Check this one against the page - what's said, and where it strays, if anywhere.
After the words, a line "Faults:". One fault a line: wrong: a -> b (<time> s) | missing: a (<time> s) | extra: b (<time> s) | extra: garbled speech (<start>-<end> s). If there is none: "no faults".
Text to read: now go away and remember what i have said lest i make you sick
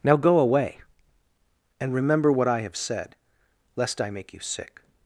now go away and remember what i have said lest i make you sick
Faults:
no faults